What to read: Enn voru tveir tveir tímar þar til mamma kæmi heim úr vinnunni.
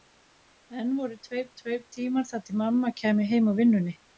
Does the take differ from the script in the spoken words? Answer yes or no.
no